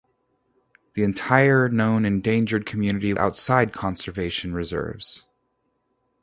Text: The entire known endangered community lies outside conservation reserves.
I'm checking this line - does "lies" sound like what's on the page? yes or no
no